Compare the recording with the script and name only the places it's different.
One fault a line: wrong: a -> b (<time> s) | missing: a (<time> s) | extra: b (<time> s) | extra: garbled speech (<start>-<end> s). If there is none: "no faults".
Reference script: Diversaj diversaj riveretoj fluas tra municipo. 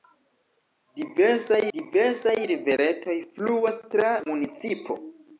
no faults